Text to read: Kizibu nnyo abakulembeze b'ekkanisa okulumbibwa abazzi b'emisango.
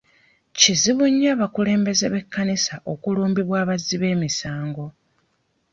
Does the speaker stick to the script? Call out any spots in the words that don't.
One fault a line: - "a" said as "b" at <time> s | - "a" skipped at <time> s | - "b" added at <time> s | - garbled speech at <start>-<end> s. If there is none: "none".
none